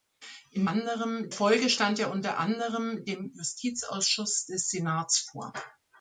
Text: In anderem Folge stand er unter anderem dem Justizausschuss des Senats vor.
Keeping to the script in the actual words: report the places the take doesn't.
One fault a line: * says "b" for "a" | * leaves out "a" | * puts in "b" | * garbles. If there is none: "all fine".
all fine